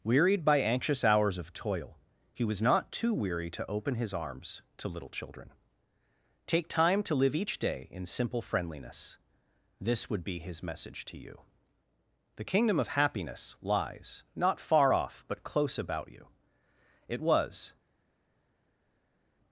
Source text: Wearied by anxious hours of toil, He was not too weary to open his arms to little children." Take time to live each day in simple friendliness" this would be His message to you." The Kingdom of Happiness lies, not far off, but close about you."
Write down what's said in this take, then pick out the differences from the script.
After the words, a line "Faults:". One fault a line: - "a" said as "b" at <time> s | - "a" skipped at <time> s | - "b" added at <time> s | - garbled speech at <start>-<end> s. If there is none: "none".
Wearied by anxious hours of toil, He was not too weary to open his arms to little children." Take time to live each day in simple friendliness" this would be His message to you." The Kingdom of Happiness lies, not far off, but close about you." It was
Faults:
- "It was" added at 17.1 s